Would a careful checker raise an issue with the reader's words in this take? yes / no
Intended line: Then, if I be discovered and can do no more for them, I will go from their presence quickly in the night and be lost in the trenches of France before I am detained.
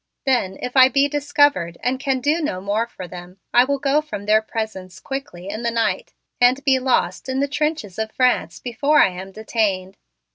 no